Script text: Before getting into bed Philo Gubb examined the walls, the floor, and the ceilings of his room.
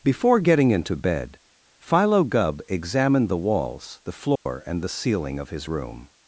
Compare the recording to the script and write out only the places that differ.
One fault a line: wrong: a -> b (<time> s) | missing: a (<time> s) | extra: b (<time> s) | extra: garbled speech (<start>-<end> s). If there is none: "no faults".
wrong: ceilings -> ceiling (4.9 s)